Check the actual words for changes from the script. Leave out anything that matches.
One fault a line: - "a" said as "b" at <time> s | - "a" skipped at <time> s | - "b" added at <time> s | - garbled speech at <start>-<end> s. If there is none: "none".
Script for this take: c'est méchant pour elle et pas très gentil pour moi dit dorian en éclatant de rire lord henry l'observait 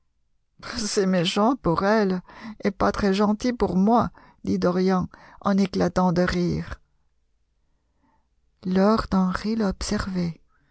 none